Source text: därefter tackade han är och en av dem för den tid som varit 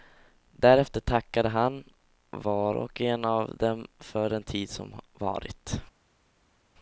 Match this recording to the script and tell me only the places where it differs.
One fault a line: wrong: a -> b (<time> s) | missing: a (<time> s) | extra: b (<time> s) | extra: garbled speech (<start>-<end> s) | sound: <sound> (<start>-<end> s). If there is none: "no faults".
wrong: är -> var (2.3 s)